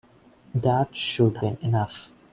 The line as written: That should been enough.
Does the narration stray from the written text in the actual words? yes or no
no